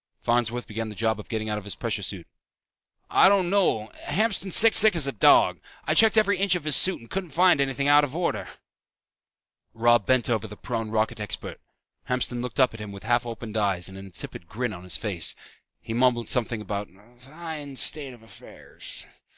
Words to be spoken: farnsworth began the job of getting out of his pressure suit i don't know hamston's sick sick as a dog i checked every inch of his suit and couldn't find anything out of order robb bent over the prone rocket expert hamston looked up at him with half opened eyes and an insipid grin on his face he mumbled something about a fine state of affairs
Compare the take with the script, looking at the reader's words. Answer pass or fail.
pass